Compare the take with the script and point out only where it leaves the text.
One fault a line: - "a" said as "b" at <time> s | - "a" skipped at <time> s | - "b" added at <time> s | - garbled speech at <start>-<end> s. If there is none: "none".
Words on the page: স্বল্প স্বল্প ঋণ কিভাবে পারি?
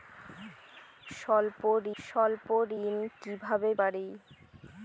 none